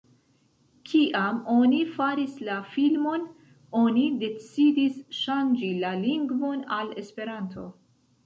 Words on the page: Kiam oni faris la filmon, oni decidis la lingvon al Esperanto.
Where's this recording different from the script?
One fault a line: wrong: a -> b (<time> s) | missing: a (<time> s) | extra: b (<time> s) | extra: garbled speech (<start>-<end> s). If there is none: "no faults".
extra: ŝanĝi (5.2 s)